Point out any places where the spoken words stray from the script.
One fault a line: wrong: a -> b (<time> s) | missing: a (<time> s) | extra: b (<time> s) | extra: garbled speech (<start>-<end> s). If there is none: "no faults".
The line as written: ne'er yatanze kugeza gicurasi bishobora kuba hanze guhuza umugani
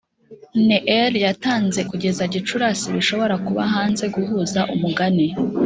no faults